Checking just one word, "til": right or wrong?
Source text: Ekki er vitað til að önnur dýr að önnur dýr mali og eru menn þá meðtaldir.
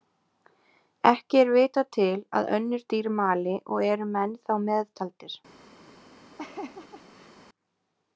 right